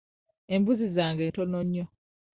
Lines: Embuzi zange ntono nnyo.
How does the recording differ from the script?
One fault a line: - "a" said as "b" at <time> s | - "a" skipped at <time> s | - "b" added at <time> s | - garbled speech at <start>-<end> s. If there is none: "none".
none